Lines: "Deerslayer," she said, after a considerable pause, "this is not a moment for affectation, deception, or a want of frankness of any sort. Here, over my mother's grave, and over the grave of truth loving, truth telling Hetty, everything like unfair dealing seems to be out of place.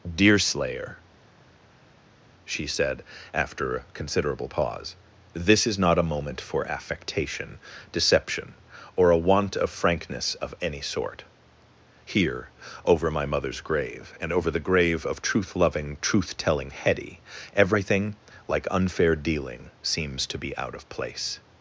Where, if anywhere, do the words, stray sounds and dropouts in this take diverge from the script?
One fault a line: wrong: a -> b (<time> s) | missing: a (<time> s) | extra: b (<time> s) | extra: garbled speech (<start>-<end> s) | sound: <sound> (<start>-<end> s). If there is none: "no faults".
no faults